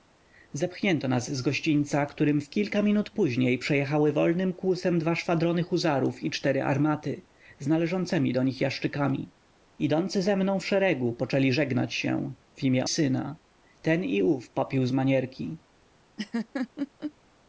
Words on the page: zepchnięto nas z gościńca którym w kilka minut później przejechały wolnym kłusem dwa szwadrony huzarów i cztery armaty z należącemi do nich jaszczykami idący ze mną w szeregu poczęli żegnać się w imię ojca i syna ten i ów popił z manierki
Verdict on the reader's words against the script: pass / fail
fail